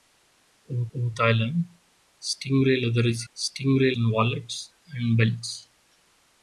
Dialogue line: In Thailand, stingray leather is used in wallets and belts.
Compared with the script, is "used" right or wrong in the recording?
wrong